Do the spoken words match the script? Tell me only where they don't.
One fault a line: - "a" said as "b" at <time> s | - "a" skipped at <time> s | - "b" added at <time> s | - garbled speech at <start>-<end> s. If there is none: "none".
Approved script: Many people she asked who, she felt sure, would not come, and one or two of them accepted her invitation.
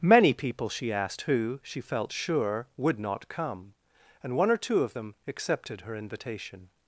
none